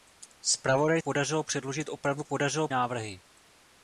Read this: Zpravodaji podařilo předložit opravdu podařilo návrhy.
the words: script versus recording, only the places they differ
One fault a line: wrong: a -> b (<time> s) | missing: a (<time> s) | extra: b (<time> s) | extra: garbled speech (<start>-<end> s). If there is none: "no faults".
no faults